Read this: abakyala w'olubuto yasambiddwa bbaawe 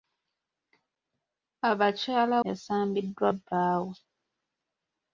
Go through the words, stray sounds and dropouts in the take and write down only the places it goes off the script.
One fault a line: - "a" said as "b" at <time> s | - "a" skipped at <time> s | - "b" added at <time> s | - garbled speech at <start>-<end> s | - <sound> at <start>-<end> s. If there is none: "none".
- "w'olubuto" skipped at 2.4 s